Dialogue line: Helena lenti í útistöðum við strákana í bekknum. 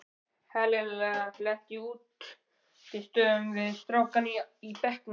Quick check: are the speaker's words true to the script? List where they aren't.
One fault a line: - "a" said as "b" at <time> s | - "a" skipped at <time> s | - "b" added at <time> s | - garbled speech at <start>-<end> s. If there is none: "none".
none